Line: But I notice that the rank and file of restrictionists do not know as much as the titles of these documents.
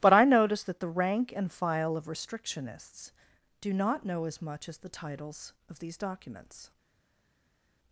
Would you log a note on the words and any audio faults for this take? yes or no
no